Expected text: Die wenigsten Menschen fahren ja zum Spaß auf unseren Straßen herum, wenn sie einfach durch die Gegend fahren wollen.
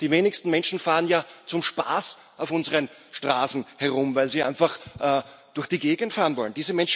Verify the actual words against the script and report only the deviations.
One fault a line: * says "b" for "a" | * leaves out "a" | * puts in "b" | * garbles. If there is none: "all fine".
* says "weil" for "wenn"